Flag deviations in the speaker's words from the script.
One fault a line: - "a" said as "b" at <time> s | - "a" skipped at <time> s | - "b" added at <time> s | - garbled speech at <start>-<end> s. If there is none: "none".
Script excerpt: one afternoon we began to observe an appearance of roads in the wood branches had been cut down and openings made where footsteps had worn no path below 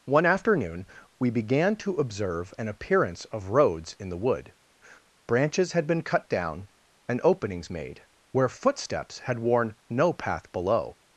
none